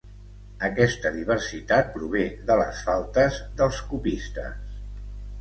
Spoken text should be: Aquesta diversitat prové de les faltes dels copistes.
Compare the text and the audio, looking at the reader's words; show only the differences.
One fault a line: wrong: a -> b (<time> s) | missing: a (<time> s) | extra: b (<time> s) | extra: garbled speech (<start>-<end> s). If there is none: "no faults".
no faults